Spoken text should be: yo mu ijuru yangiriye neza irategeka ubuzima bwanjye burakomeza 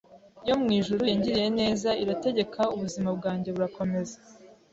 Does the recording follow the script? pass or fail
pass